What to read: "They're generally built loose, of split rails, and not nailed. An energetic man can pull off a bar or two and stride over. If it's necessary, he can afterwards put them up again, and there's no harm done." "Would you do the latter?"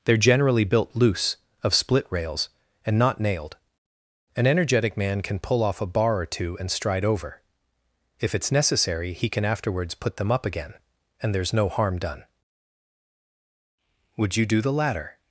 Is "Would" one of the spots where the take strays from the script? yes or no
no